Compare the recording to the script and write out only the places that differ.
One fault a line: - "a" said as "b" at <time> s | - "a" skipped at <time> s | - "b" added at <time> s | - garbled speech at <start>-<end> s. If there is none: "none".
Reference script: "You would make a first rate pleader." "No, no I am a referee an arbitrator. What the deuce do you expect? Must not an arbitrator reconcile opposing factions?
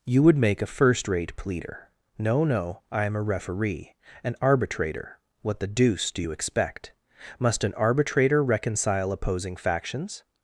- "not" skipped at 7.6 s